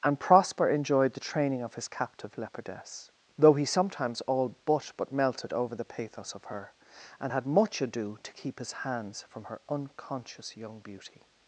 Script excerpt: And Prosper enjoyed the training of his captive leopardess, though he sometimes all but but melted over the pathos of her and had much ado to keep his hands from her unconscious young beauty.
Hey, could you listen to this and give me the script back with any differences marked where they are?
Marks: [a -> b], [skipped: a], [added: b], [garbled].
And Prosper enjoyed the training of his captive leopardess, though he sometimes all but but melted over the pathos of her and had much ado to keep his hands from her unconscious young beauty.